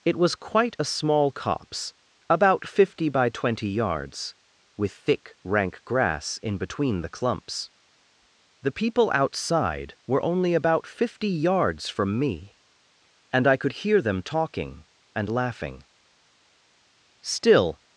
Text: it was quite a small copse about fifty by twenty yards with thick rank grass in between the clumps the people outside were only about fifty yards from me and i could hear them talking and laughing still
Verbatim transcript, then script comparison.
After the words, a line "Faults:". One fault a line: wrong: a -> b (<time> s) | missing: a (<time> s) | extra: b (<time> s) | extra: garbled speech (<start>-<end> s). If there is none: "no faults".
it was quite a small copse about fifty by twenty yards with thick rank grass in between the clumps the people outside were only about fifty yards from me and i could hear them talking and laughing still
Faults:
no faults